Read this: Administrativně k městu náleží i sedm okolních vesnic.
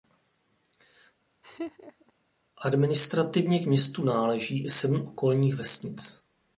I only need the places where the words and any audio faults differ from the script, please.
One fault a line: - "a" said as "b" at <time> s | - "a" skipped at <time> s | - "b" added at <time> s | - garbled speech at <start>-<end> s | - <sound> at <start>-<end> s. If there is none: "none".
- laugh at 1.4-2.1 s